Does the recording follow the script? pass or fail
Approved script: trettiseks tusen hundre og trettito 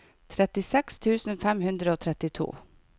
fail